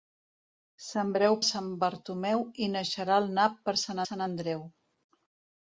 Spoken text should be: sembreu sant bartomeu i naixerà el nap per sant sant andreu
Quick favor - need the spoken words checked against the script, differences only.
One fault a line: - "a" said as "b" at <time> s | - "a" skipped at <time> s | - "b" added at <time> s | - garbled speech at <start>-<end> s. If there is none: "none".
none